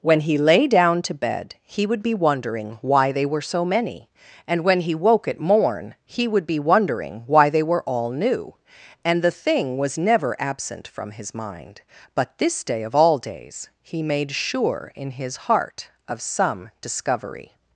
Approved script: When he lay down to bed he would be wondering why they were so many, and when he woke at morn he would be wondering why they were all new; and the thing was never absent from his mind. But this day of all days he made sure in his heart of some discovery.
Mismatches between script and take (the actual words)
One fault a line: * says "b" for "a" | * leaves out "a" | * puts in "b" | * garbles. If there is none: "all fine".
all fine